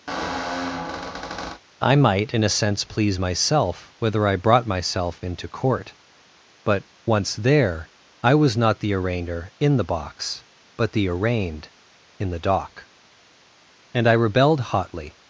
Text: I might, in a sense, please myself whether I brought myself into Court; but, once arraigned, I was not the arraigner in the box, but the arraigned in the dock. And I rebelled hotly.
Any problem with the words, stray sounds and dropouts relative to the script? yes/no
yes